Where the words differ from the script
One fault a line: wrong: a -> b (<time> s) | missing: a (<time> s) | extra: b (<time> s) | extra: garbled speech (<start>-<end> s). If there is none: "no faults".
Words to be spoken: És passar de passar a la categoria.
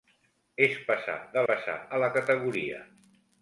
no faults